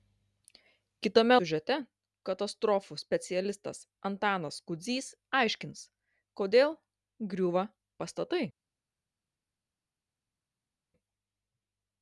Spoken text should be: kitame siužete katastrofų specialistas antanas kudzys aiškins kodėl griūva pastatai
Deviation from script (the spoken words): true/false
false